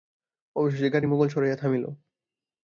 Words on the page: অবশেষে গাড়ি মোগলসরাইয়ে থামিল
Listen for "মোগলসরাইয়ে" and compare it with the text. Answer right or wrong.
right